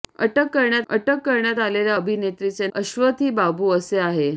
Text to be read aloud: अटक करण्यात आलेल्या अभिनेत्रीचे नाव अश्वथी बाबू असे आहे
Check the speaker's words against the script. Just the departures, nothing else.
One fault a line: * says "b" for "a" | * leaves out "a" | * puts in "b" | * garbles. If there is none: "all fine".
* puts in "अटक करण्यात"
* leaves out "नाव"